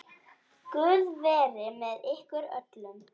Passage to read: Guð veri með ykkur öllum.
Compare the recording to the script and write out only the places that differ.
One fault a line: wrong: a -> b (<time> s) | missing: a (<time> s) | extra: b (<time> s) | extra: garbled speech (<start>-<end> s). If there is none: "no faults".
no faults